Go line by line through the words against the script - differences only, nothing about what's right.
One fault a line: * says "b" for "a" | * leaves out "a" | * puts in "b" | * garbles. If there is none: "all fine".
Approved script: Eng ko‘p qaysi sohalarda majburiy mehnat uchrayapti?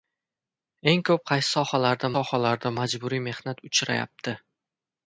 * puts in "sohalarda"